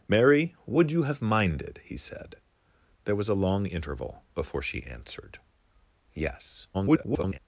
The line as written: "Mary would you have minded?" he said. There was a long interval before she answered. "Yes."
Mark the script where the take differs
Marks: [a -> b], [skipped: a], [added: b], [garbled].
"Mary would you have minded?" he said. There was a long interval before she answered. "Yes." [garbled]